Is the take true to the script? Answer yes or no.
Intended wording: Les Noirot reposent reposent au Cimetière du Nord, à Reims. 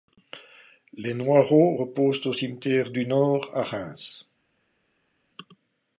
no